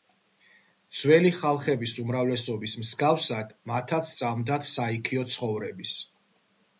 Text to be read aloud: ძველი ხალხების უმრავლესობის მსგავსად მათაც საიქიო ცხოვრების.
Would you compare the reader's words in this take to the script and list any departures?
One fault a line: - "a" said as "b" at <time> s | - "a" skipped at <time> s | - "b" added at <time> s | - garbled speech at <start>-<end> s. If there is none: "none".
- "სწამდათ" added at 4.1 s